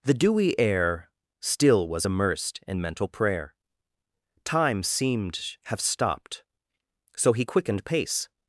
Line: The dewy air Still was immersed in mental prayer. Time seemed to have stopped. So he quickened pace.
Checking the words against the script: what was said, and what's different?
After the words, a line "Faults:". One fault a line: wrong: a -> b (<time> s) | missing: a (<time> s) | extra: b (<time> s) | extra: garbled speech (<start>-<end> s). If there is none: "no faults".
The dewy air Still was immersed in mental prayer. Time seemed have stopped. So he quickened pace.
Faults:
missing: to (5.6 s)